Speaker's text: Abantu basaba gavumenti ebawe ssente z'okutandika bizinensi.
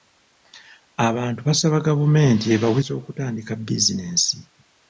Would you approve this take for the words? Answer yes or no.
no